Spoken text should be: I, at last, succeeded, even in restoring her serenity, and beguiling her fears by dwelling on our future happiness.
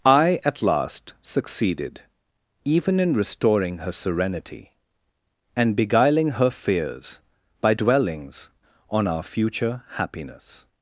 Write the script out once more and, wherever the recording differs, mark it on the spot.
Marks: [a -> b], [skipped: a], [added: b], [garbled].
I, at last, succeeded, even in restoring her serenity, and beguiling her fears by [dwelling -> dwellings] on our future happiness.